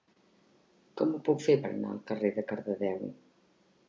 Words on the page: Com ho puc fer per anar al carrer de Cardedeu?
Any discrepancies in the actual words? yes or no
no